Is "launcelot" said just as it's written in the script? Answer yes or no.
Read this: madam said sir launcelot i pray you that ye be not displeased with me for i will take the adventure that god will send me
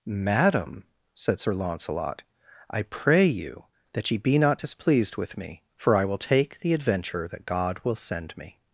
yes